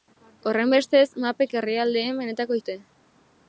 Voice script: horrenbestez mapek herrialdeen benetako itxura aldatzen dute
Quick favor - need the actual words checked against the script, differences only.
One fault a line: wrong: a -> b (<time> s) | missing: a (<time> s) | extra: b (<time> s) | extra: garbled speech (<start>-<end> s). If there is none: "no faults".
missing: itxura aldatzen (2.6 s)